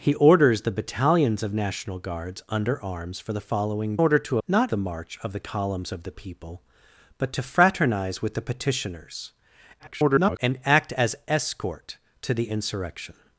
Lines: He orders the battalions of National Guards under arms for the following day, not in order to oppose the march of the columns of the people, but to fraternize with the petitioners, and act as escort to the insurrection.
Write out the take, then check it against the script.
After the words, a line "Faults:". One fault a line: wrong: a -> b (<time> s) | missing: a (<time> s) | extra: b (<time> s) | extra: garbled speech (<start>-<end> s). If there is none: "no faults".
He orders the battalions of National Guards under arms for the following order to not the march of the columns of the people, but to fraternize with the petitioners, [garbled] and act as escort to the insurrection.
Faults:
missing: day not in (4.0 s)
wrong: oppose -> not (4.4 s)
extra: garbled speech (9.8-10.4 s)